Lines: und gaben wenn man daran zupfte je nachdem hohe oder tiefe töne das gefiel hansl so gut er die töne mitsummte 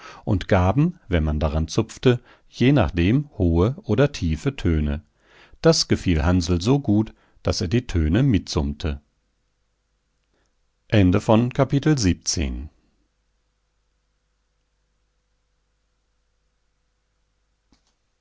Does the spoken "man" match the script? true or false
true